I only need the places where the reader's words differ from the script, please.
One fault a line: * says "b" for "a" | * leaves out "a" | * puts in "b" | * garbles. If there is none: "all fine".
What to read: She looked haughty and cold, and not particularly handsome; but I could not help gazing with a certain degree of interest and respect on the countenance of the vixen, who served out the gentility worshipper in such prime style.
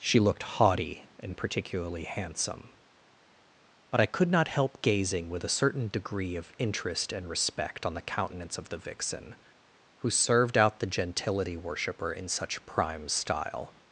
* leaves out "cold and not"